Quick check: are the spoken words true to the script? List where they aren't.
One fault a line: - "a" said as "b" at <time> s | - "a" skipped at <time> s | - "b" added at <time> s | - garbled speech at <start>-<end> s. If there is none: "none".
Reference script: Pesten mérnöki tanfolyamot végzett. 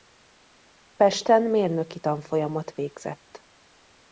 none